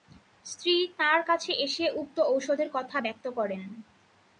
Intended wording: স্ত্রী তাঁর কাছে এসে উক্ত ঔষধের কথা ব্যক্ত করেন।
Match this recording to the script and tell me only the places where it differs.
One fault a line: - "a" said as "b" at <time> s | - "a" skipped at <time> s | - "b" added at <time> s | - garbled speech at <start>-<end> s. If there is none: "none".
none